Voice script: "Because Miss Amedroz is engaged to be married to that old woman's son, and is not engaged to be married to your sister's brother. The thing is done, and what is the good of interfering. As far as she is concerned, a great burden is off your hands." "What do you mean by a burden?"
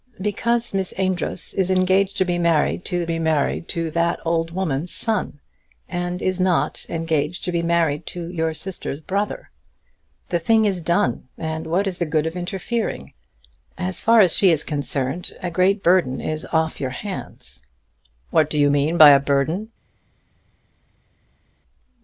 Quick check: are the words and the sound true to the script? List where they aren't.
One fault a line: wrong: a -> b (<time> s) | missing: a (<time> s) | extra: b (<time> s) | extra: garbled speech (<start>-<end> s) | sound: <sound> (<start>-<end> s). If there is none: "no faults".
extra: be married to (3.0 s)